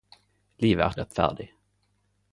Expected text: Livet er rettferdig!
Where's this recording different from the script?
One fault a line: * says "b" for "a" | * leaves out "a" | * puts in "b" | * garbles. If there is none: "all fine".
all fine